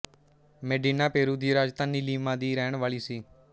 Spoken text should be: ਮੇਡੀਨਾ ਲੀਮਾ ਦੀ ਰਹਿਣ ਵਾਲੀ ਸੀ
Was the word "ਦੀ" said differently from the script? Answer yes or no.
no